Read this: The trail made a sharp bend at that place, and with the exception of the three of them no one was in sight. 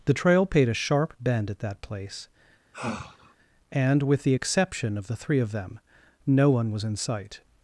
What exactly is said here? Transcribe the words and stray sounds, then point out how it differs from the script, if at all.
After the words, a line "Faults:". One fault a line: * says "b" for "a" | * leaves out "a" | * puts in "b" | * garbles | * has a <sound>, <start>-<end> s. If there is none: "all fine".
The trail paid a sharp bend at that place, and with the exception of the three of them no one was in sight.
Faults:
* says "paid" for "made"
* has a sigh, 2.7-3.3 s